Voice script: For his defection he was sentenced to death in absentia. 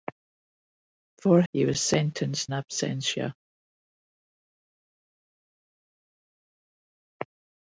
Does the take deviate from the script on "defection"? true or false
true